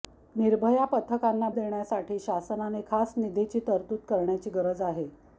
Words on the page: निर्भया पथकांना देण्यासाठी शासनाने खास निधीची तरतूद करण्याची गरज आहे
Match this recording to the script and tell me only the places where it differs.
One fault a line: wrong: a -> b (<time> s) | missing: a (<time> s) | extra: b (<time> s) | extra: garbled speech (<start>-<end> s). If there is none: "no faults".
no faults